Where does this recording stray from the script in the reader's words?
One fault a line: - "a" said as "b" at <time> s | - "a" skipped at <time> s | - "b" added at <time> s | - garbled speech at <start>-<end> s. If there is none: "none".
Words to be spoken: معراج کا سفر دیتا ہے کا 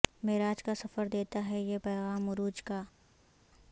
- "یہ پیغام عروج" added at 1.6 s